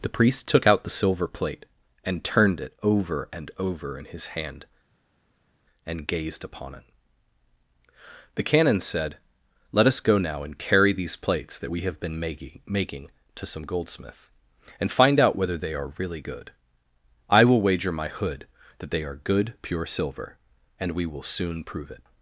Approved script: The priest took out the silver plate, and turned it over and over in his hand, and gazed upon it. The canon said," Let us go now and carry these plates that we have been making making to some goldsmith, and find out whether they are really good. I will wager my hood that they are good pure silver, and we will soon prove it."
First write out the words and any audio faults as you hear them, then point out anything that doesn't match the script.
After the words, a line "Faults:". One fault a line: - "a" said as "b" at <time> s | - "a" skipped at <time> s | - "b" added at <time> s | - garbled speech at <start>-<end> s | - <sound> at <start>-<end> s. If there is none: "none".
The priest took out the silver plate, and turned it over and over in his hand, and gazed upon it. The canon said," Let us go now and carry these plates that we have been making making to some goldsmith, and find out whether they are really good. I will wager my hood that they are good pure silver, and we will soon prove it."
Faults:
none